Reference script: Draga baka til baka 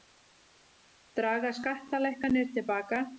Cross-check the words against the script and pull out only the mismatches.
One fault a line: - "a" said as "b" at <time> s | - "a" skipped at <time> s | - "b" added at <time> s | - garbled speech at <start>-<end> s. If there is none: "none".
- "baka" said as "skattalækkanir" at 1.6 s